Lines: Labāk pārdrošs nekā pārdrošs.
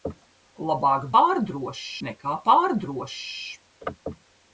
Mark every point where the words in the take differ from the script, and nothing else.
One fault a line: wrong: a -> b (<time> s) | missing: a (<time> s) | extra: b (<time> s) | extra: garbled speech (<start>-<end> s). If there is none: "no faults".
no faults